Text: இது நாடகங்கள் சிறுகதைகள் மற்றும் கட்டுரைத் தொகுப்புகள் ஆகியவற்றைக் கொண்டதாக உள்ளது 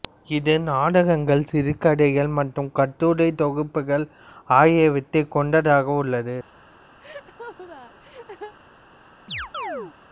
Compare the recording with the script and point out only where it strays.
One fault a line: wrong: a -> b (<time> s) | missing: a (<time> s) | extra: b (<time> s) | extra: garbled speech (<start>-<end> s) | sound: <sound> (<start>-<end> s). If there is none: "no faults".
sound: laugh (7.0-8.5 s)
sound: chirp (9.3-9.9 s)